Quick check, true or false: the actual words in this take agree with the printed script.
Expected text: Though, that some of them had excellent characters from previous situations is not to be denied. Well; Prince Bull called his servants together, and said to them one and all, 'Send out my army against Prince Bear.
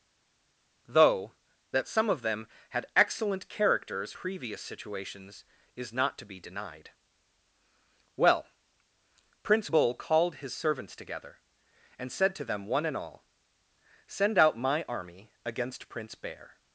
false